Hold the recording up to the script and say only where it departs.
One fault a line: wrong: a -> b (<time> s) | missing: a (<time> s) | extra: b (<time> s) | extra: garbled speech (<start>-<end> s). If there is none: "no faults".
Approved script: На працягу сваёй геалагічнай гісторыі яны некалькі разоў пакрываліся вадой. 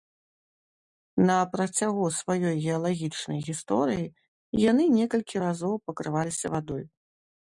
no faults